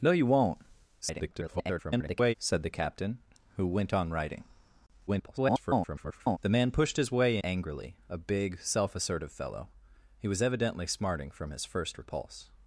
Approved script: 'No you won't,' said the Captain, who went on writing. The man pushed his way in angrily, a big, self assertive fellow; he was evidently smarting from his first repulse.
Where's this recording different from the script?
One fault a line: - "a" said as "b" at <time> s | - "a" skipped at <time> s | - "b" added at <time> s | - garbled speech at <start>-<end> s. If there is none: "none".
- garbled speech at 1.0-2.3 s
- garbled speech at 5.1-6.4 s
- "in" skipped at 7.4 s